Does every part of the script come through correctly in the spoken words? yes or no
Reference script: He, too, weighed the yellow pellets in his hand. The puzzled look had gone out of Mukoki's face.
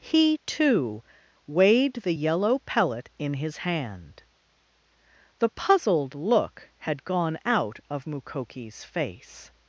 no